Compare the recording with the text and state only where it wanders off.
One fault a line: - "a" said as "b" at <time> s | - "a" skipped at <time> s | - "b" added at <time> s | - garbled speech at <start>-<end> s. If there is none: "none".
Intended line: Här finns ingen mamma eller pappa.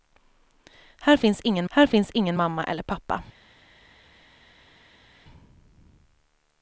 - "här finns ingen" added at 1.7 s